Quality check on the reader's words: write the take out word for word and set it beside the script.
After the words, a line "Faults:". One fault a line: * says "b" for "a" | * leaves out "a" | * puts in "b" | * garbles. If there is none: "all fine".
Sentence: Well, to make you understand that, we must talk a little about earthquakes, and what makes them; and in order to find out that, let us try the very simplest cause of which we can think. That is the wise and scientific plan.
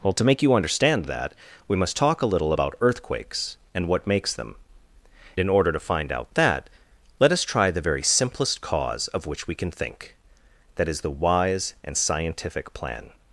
Well, to make you understand that, we must talk a little about earthquakes, and what makes them; in order to find out that, let us try the very simplest cause of which we can think. That is the wise and scientific plan.
Faults:
* leaves out "and"